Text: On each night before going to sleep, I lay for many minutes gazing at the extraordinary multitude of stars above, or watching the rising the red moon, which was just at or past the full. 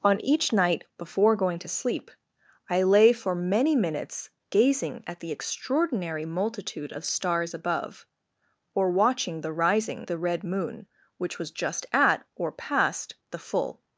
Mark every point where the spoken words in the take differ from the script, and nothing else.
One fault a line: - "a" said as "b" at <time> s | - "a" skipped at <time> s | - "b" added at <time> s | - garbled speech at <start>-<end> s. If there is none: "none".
none